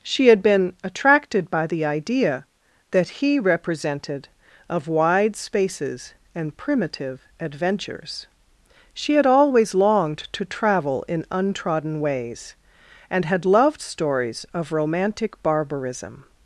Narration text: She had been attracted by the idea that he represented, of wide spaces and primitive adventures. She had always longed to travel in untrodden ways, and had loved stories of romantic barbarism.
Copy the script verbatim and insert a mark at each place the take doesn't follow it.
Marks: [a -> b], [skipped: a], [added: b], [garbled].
She had been attracted by the idea that he represented, of wide spaces and primitive adventures. She had always longed to travel in untrodden ways, and had loved stories of romantic barbarism.